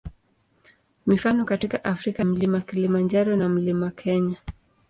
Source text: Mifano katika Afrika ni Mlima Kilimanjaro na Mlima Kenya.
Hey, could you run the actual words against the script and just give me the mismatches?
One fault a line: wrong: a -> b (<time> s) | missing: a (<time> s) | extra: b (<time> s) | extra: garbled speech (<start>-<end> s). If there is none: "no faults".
missing: ni (2.2 s)